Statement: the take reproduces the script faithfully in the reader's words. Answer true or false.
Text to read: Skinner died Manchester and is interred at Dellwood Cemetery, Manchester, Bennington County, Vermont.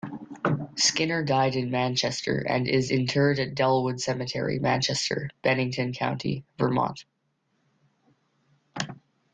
false